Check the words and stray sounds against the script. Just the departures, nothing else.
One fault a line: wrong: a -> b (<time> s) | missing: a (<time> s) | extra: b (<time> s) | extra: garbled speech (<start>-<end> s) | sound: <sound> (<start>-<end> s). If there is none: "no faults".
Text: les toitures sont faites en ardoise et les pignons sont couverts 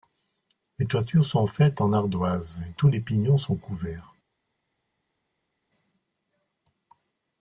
extra: tous (2.8 s)